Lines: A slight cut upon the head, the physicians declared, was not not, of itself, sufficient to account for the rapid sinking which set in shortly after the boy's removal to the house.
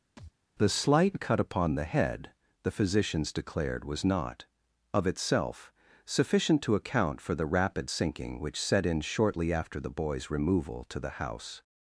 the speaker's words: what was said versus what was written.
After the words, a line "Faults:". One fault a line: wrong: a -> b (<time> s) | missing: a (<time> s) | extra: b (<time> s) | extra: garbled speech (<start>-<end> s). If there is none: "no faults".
The slight cut upon the head, the physicians declared, was not, of itself, sufficient to account for the rapid sinking which set in shortly after the boy's removal to the house.
Faults:
wrong: A -> The (0.6 s)
missing: not (4.5 s)